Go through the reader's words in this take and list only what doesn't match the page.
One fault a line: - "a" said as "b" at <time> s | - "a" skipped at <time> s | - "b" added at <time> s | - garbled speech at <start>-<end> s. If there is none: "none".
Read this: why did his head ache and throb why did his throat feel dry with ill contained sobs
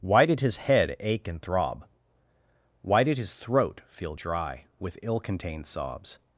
none